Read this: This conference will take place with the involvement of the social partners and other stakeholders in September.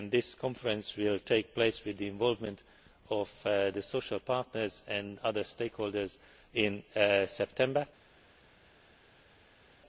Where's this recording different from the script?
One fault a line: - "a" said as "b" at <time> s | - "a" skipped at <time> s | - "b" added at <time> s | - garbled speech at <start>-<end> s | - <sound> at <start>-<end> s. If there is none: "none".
none